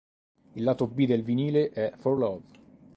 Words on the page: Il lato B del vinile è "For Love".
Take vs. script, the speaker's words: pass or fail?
pass